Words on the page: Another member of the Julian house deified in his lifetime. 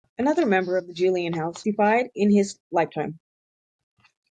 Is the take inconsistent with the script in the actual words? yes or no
no